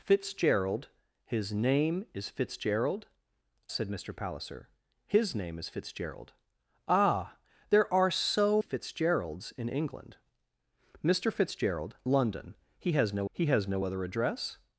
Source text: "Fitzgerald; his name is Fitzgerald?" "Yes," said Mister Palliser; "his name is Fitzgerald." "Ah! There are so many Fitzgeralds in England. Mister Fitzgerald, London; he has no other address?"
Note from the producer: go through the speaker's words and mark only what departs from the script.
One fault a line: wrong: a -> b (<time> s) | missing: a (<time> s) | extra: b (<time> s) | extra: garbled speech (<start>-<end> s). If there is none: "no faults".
missing: Yes (3.0 s)
missing: many (8.6 s)
extra: he has no (13.3 s)